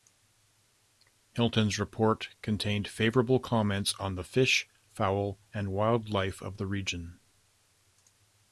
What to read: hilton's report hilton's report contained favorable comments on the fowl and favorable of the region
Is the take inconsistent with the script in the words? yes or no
yes